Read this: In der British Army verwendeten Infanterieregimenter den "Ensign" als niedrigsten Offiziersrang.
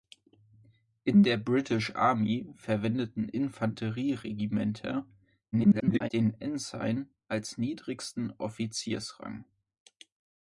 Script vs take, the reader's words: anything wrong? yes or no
yes